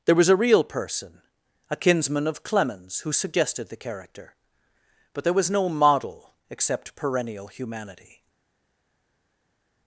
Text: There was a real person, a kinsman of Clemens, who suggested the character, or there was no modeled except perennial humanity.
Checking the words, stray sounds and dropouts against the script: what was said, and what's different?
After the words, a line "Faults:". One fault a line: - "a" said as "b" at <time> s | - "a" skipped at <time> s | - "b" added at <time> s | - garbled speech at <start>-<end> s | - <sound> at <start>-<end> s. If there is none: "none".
There was a real person, a kinsman of Clemens, who suggested the character, but there was no model except perennial humanity.
Faults:
- "or" said as "but" at 5.1 s
- "modeled" said as "model" at 5.7 s